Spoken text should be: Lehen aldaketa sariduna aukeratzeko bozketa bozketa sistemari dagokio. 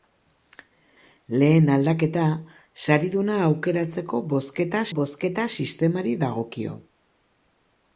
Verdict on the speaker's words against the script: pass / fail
pass